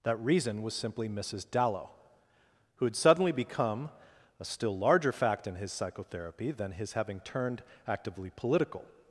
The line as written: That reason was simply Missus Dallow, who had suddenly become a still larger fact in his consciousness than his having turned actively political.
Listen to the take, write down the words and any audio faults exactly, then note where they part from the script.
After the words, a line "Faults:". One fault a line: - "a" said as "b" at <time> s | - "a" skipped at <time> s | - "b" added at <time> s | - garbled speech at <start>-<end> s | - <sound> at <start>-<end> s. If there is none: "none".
That reason was simply Missus Dallow, who had suddenly become a still larger fact in his psychotherapy than his having turned actively political.
Faults:
- "consciousness" said as "psychotherapy" at 5.7 s